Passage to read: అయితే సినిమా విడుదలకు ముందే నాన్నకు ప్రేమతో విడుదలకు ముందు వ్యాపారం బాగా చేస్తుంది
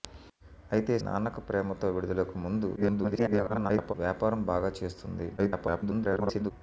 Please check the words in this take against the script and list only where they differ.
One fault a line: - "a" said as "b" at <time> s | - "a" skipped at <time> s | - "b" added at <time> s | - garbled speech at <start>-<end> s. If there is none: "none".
- "సినిమా విడుదలకు ముందే" skipped at 0.9 s
- garbled speech at 2.8-3.9 s
- garbled speech at 5.4-6.5 s